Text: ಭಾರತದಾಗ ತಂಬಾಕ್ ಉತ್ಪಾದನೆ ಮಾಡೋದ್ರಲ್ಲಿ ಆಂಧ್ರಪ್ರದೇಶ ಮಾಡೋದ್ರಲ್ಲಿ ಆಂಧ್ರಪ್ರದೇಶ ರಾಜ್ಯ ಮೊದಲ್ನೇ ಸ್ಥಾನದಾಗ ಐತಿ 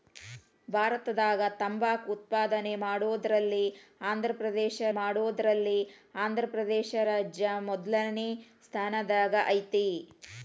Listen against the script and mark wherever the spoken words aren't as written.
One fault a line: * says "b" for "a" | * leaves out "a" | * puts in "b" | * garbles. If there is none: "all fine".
all fine